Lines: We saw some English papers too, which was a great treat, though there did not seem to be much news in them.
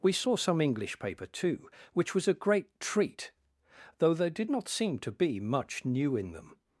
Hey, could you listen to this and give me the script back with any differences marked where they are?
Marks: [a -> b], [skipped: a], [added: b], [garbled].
We saw some English [papers -> paper] too, which was a great treat, though there did not seem to be much [news -> new] in them.